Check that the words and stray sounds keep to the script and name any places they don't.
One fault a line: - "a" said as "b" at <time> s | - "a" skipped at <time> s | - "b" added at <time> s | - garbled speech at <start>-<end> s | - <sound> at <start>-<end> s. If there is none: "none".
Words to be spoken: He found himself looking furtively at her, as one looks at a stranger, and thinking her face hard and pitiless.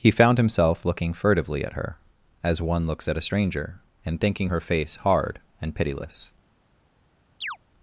- chirp at 7.4-7.6 s